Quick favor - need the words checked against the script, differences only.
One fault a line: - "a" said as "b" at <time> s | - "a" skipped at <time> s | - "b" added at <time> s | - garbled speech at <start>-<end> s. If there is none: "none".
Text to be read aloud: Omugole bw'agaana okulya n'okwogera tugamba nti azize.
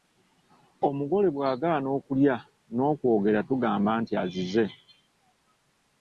none